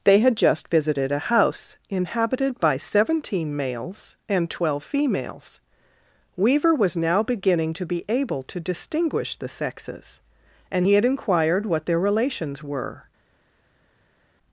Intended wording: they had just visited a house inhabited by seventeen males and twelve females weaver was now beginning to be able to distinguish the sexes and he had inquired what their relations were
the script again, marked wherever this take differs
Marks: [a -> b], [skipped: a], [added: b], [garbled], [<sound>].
they had just visited a house inhabited by seventeen males and twelve females weaver was now beginning to be able to distinguish the sexes and he had inquired what their relations were